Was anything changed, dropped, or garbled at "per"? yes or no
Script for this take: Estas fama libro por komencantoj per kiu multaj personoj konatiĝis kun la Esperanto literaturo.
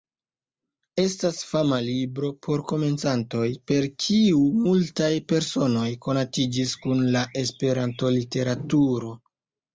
no